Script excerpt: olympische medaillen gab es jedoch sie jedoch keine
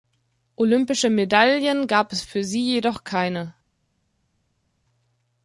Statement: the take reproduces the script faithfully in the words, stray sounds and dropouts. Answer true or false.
false